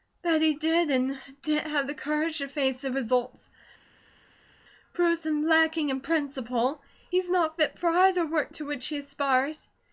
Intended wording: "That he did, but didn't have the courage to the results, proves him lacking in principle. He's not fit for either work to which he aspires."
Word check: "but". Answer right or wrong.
wrong